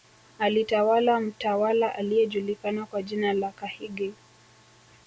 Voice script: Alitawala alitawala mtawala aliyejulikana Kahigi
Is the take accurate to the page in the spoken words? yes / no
no